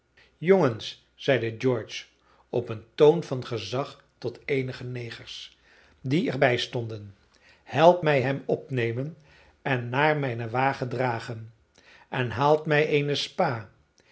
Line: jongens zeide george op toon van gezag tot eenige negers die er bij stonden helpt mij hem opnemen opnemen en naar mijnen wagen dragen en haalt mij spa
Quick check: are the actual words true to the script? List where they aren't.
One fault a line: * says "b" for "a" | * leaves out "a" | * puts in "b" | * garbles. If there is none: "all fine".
* puts in "een"
* leaves out "opnemen"
* puts in "eene"